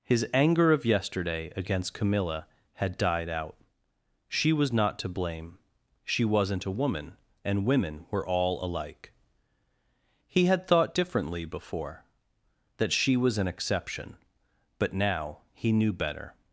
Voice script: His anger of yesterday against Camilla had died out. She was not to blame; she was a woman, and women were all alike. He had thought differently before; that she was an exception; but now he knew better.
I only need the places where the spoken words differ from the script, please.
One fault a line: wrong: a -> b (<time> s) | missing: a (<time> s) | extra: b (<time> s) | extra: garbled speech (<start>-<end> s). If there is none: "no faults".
wrong: was -> wasn't (6.2 s)